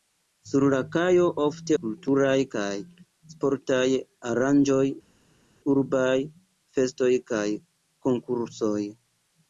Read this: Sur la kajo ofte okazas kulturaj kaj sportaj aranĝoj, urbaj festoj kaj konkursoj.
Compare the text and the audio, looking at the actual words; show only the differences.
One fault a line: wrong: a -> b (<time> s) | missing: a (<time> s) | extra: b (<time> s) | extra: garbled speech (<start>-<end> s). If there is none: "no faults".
missing: okazas (1.8 s)